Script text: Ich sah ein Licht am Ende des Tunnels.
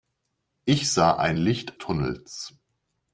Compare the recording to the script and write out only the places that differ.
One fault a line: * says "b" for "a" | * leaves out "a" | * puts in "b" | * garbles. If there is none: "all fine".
* leaves out "am Ende des"